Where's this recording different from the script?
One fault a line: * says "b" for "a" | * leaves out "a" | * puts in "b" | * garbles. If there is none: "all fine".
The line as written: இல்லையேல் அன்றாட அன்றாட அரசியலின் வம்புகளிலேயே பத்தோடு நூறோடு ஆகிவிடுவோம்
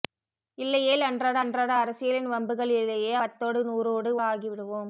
all fine